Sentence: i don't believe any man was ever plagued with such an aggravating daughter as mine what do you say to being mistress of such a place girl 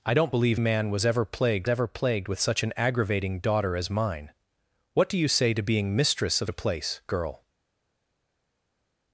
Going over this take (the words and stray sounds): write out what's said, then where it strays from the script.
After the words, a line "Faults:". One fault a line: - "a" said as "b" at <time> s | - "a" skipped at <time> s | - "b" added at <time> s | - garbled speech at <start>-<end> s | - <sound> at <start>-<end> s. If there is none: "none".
i don't believe man was ever plagued ever plagued with such an aggravating daughter as mine what do you say to being mistress of a place girl
Faults:
- "any" skipped at 0.6 s
- "ever plagued" added at 1.7 s
- "such" skipped at 6.5 s